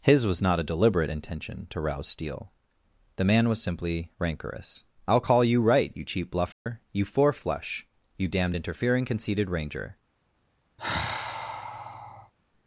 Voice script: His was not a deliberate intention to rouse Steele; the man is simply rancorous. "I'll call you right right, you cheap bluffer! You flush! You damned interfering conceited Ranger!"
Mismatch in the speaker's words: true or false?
true